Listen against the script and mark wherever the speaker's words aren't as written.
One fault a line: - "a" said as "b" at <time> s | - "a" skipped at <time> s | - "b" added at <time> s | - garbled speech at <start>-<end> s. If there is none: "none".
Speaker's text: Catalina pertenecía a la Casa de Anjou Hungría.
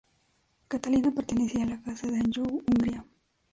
none